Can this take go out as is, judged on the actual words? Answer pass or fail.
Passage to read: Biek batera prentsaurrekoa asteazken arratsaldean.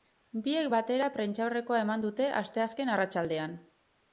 fail